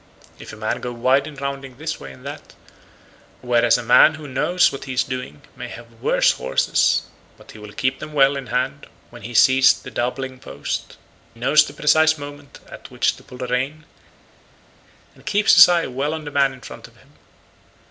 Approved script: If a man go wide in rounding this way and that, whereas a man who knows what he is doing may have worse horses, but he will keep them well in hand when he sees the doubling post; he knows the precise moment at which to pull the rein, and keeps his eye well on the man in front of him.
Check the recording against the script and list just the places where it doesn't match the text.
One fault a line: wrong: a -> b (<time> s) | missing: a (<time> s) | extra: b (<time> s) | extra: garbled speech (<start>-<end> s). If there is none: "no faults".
missing: he (11.0 s)